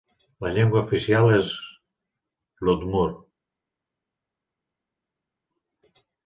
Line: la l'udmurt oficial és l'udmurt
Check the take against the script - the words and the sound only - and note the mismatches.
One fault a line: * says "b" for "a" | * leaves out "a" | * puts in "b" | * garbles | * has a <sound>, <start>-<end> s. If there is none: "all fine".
* says "llengua" for "l'udmurt"